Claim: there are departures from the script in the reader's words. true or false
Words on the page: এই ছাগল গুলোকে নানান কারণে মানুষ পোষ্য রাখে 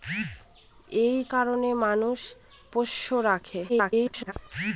true